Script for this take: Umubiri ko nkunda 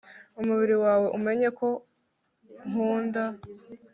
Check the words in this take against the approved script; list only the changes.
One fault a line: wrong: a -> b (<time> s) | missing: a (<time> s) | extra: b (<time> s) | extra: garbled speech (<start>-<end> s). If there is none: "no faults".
extra: wawe umenye (0.8 s)